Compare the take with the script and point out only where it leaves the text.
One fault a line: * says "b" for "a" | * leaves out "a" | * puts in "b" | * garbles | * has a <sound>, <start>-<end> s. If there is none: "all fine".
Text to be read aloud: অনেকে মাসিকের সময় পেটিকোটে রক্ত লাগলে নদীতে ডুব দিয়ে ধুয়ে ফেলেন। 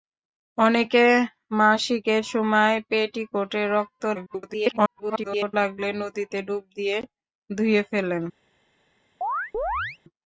* garbles
* has a chirp, 9.2-10.0 s